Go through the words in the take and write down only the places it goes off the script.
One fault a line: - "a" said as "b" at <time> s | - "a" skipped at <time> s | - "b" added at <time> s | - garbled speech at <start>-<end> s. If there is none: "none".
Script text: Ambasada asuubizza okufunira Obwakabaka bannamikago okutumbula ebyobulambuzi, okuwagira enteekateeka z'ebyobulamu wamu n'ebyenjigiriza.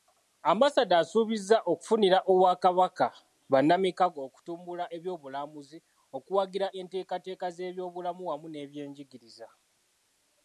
none